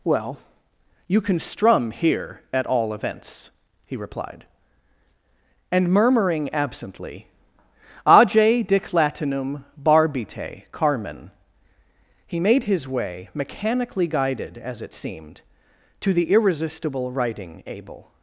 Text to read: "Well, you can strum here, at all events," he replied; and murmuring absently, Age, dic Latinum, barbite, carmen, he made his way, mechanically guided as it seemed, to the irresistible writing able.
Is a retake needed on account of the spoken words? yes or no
no